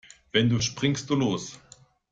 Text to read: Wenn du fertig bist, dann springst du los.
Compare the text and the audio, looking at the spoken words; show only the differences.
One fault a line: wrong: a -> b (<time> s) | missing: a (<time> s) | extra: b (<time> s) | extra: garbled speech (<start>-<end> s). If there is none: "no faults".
missing: fertig bist dann (0.6 s)